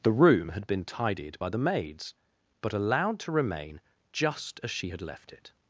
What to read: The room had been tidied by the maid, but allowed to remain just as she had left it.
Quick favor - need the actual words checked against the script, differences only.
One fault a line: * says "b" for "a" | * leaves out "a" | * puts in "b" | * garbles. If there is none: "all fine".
* says "maids" for "maid"